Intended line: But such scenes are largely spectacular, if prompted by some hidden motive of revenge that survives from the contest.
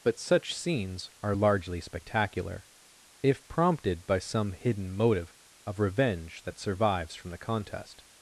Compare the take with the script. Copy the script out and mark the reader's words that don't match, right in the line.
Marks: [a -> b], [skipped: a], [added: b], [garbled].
But such scenes are largely spectacular, if prompted by some hidden motive of revenge that survives from the contest.